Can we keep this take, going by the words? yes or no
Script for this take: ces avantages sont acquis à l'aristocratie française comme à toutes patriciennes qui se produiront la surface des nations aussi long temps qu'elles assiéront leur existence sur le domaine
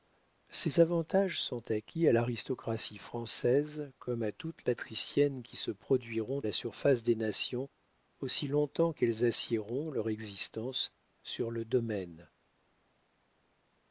yes